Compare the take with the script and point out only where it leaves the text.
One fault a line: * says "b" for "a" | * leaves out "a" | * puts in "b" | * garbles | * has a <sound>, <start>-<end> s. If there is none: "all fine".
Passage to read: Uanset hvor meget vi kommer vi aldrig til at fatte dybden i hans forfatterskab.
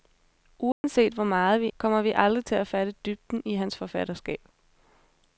* has a dropout, 0.7-0.8 s